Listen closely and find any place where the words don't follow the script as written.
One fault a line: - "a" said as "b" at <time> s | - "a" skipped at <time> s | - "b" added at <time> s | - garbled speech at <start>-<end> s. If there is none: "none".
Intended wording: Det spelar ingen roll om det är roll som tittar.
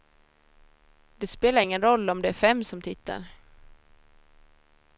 - "roll" said as "fem" at 2.3 s